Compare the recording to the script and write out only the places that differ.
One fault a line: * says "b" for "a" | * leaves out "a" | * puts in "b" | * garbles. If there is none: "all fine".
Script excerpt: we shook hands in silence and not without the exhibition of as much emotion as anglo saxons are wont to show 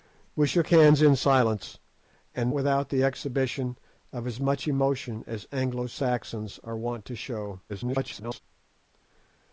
* leaves out "not"
* garbles